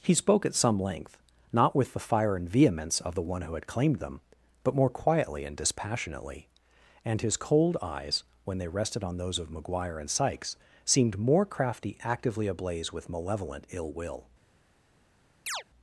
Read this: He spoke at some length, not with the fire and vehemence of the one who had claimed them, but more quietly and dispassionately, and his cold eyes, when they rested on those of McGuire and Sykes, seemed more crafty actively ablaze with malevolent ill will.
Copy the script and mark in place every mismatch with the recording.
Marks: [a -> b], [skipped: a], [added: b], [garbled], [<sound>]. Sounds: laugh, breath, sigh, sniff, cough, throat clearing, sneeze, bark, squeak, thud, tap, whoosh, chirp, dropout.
He spoke at some length, not with the fire and vehemence of the one who had claimed them, but more quietly and dispassionately, and his cold eyes, when they rested on those of McGuire and Sykes, seemed more crafty actively ablaze with malevolent ill will. [chirp]